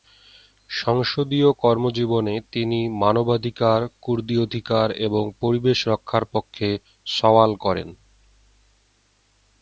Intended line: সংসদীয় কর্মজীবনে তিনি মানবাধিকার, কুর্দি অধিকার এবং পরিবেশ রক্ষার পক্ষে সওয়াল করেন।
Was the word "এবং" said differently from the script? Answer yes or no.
no